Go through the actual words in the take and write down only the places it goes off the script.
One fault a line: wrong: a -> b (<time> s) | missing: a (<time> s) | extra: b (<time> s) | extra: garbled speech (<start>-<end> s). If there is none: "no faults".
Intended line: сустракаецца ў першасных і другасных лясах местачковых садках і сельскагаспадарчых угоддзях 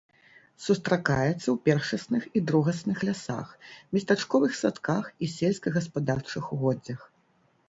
no faults